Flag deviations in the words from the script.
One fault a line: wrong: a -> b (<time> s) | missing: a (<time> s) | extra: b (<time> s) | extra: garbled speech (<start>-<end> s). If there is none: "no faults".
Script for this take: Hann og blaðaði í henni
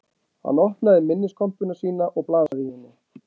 extra: opnaði minniskompuna sína (0.6 s)